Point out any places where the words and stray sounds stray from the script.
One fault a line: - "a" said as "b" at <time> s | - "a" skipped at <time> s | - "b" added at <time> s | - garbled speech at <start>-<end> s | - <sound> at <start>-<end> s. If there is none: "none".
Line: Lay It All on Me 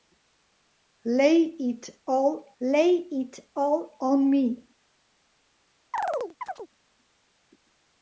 - "lay It All" added at 2.6 s
- chirp at 5.9-6.7 s